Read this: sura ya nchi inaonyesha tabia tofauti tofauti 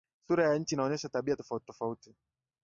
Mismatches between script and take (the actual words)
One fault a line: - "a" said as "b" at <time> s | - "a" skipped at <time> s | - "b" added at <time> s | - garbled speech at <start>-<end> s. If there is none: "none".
none